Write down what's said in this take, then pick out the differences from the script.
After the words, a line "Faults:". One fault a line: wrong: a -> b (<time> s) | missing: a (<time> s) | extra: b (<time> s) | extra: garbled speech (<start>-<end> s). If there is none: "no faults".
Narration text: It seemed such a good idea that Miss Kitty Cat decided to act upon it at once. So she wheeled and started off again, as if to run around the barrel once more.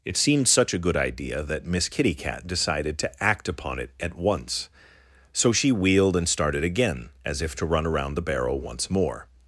It seemed such a good idea that Miss Kitty Cat decided to act upon it at once. So she wheeled and started again, as if to run around the barrel once more.
Faults:
missing: off (6.6 s)